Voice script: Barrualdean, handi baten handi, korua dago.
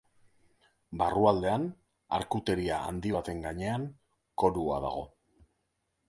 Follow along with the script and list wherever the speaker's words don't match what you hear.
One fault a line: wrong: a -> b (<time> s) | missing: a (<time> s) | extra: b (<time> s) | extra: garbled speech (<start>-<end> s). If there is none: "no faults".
extra: arkuteria (2.2 s)
wrong: handi -> gainean (3.5 s)